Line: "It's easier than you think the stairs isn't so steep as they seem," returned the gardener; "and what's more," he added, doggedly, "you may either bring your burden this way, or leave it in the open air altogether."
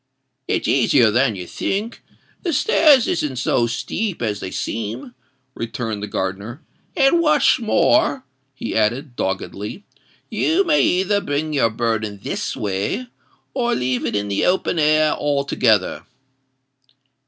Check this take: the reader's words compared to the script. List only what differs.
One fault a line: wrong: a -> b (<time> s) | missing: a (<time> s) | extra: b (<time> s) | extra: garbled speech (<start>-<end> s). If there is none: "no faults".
no faults